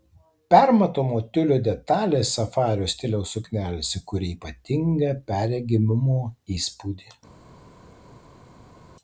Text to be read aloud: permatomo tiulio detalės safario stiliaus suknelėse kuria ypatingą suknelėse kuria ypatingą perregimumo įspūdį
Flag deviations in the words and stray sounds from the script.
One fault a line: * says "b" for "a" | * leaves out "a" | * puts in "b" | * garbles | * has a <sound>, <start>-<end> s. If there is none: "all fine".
* leaves out "suknelėse kuria ypatingą"